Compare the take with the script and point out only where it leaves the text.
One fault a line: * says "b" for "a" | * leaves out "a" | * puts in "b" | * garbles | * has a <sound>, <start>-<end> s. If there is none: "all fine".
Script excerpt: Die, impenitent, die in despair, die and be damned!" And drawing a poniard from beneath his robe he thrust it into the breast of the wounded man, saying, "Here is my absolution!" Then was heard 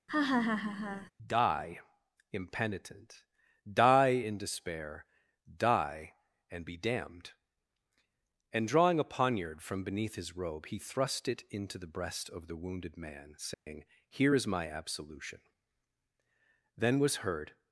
* has a laugh, 0.1-1.1 s
* has a dropout, 13.5-13.7 s